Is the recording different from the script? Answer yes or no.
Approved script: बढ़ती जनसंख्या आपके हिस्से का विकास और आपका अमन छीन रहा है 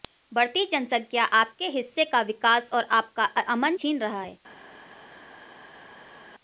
no